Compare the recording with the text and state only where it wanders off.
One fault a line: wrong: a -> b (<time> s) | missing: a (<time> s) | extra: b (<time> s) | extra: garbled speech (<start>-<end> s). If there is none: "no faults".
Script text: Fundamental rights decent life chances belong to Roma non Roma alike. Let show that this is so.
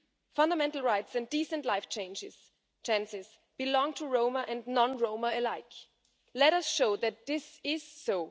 extra: and (1.1 s)
extra: and (4.5 s)
extra: us (6.5 s)